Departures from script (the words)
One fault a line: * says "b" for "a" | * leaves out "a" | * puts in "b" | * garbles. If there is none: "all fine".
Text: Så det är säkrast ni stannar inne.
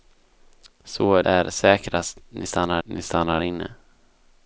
* leaves out "det"
* puts in "ni stannar"